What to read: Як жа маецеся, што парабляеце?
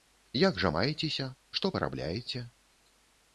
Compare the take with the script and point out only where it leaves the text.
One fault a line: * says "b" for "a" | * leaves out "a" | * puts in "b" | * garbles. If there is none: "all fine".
all fine